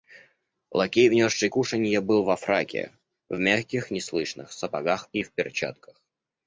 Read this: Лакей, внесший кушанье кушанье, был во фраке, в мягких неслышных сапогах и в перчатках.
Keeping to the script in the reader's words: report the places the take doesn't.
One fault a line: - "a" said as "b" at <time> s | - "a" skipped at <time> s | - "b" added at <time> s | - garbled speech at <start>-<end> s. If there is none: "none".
- "кушанье" skipped at 2.0 s